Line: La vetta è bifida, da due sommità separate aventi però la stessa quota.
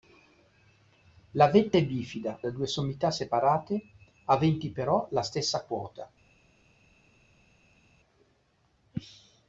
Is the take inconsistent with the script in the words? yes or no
no